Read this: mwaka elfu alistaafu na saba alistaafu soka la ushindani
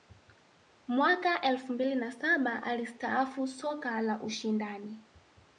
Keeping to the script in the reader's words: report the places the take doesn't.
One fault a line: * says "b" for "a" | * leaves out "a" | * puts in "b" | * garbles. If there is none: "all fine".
* says "mbili" for "alistaafu"